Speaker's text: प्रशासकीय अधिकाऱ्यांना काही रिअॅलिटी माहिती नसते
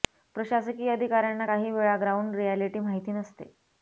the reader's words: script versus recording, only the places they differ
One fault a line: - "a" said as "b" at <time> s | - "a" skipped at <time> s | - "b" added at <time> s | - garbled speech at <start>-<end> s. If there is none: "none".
- "वेळा ग्राऊंड" added at 1.7 s